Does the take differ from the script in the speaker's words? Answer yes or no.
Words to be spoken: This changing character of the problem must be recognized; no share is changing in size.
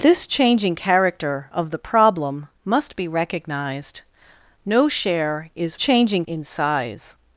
no